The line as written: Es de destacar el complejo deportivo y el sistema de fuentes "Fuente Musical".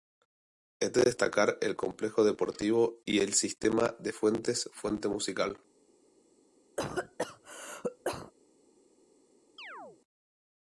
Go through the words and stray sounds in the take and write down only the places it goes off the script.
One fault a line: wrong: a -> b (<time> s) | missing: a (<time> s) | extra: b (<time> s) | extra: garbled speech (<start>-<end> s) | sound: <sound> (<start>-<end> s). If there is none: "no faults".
sound: cough (6.8-8.3 s)
sound: chirp (9.6-10.0 s)